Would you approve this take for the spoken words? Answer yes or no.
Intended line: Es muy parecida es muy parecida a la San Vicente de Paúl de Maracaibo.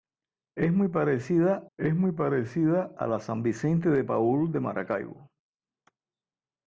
yes